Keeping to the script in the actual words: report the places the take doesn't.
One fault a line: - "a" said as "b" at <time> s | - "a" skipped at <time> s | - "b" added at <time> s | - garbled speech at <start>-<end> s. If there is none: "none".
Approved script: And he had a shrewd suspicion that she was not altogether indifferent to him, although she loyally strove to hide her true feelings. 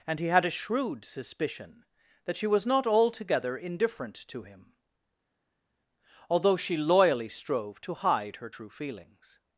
none